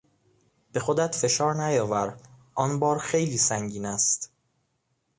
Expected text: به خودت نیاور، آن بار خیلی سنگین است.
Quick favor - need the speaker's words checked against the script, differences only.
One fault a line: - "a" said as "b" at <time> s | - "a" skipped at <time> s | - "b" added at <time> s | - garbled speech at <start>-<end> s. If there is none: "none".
- "فشار" added at 1.1 s